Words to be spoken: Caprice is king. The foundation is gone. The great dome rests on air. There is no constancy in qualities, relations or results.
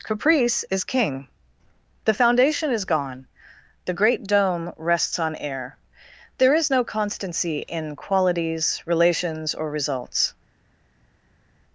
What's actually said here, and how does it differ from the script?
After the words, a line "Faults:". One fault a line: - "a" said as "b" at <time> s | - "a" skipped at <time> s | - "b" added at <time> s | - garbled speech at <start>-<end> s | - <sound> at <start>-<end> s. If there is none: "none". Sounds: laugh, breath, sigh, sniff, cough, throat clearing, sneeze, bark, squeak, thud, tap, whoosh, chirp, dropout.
Caprice is king. The foundation is gone. The great dome rests on air. There is no constancy in qualities, relations or results.
Faults:
none